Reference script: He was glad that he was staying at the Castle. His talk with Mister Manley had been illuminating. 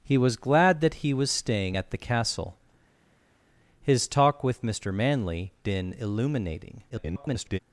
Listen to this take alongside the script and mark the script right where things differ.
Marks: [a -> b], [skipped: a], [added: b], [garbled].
He was glad that he was staying at the Castle. His talk with Mister Manley [skipped: had] been illuminating. [garbled]